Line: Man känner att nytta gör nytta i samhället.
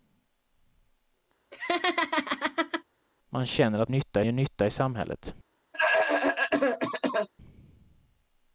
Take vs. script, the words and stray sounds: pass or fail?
fail